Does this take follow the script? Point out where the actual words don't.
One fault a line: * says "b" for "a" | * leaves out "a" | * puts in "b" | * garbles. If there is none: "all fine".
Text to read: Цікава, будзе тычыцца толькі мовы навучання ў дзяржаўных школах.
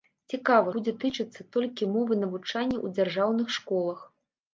all fine